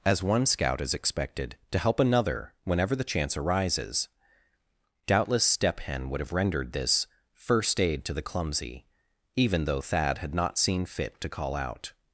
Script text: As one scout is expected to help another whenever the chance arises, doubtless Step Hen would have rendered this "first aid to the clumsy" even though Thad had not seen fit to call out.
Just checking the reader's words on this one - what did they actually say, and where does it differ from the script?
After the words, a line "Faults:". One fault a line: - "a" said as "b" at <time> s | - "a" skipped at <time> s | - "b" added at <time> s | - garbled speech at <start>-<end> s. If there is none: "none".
As one scout is expected to help another whenever the chance arises, doubtless Step Hen would have rendered this "first aid to the clumsy" even though Thad had not seen fit to call out.
Faults:
none